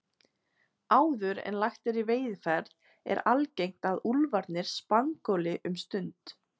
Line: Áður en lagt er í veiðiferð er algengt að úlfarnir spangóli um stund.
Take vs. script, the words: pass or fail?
pass